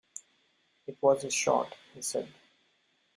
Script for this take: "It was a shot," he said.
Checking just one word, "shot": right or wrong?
right